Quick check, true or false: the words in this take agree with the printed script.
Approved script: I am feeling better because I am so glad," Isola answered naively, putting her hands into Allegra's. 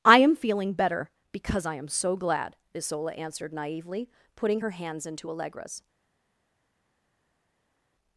true